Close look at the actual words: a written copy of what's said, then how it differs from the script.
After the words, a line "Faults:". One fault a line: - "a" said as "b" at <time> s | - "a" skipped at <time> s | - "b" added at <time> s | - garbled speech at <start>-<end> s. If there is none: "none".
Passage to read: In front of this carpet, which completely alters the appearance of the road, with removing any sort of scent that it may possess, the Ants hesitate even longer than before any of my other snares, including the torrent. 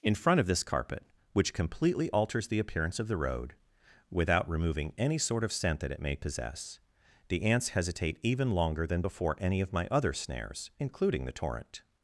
In front of this carpet, which completely alters the appearance of the road, without removing any sort of scent that it may possess, the Ants hesitate even longer than before any of my other snares, including the torrent.
Faults:
- "with" said as "without" at 4.1 s